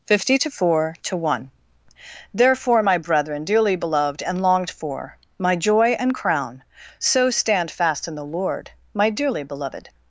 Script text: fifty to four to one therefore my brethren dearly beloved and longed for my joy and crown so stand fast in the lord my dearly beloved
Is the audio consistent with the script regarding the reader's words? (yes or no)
yes